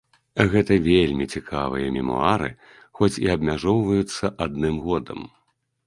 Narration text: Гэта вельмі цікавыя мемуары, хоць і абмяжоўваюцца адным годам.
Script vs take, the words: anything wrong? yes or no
no